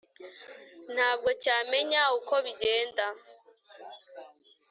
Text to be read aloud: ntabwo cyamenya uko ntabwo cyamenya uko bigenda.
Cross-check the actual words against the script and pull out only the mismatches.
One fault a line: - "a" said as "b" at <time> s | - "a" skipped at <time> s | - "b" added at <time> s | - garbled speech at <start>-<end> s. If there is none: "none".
- "ntabwo cyamenya uko" skipped at 2.3 s